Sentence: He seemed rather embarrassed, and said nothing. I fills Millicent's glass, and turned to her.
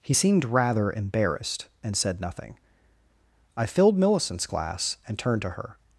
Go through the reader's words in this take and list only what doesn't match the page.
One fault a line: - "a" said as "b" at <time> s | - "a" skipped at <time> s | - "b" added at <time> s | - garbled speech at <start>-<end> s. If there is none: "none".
- "fills" said as "filled" at 3.7 s